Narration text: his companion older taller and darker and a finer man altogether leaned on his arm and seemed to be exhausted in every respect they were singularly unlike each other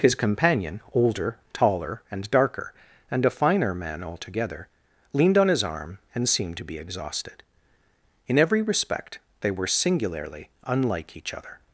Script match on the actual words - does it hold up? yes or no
yes